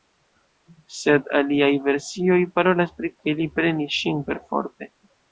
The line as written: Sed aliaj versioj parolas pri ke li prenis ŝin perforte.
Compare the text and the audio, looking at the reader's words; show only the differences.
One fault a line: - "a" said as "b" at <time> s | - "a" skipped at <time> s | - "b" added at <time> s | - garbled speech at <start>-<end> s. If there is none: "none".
none